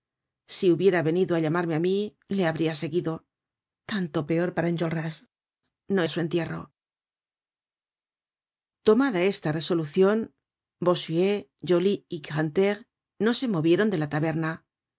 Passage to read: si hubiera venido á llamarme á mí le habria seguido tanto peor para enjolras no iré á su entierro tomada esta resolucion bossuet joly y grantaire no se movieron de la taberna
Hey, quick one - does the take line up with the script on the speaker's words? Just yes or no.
no